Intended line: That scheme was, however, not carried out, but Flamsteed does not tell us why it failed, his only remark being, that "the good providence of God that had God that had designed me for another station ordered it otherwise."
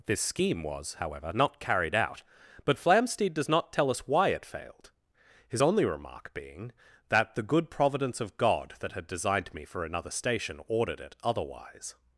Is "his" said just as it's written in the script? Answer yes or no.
yes